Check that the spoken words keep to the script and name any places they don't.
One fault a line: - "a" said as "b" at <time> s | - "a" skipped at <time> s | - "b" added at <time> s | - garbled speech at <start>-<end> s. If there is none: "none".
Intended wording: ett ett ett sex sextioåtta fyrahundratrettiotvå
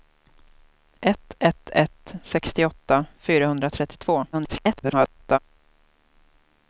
- "sex" skipped at 2.1 s
- garbled speech at 4.3-5.4 s